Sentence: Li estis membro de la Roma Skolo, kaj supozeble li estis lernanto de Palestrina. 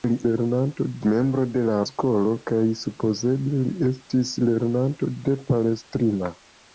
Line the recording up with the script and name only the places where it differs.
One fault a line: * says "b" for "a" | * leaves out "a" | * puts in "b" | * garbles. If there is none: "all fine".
* says "lernanto" for "estis"
* leaves out "Roma"